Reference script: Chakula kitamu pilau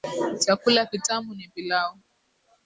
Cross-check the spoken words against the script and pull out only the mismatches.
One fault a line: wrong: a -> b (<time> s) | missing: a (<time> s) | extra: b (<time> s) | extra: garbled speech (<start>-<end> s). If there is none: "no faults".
extra: ni (1.3 s)